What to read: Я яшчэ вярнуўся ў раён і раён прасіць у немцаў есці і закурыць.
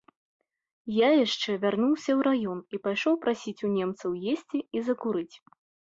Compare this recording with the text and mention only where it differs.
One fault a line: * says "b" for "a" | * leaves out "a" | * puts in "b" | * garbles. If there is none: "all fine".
* says "пайшоў" for "раён"